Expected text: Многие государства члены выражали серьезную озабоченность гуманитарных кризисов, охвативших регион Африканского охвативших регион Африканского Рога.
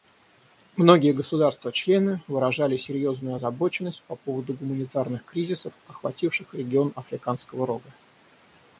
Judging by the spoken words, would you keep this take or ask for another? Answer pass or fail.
fail